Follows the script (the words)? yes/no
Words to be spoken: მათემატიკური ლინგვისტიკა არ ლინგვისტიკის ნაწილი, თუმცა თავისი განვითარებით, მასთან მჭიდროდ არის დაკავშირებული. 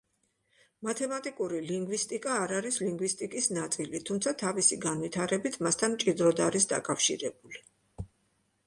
no